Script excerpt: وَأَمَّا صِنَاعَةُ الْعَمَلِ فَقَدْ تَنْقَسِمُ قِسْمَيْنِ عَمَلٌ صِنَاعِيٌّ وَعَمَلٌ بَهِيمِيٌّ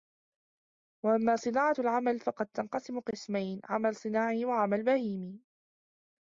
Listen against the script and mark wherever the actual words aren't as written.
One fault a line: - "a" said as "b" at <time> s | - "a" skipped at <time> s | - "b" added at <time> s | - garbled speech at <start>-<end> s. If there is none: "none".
none